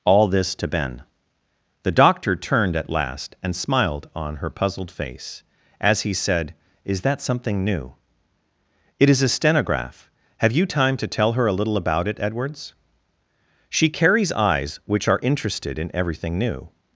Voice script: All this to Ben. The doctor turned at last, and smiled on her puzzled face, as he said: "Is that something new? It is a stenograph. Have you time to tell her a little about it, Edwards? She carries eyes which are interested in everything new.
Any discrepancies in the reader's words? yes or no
no